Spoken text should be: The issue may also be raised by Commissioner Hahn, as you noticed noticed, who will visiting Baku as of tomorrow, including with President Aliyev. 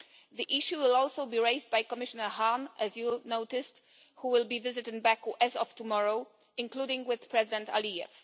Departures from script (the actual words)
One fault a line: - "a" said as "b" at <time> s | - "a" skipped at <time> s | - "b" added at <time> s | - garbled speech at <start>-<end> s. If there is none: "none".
- "may" said as "will" at 0.8 s
- "noticed" skipped at 3.8 s
- "be" added at 4.5 s